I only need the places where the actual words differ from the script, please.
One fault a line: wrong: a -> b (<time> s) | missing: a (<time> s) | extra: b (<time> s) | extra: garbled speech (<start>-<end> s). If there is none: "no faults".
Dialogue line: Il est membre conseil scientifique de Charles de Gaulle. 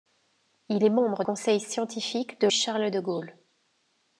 no faults